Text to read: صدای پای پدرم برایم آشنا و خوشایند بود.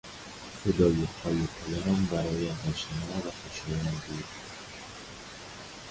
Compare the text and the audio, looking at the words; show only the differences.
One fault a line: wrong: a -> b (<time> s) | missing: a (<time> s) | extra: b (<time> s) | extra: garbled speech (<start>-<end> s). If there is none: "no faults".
no faults